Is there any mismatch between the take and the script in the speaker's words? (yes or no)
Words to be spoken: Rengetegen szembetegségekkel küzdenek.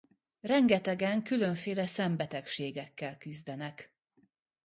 yes